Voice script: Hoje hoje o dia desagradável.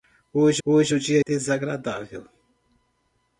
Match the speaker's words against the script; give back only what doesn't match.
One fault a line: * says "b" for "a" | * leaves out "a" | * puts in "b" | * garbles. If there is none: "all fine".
all fine